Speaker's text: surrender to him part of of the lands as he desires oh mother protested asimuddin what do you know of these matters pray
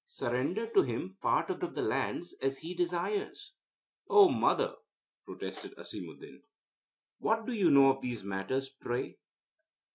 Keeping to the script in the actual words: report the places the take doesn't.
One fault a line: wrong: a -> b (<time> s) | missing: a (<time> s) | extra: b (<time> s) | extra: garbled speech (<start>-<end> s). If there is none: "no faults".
no faults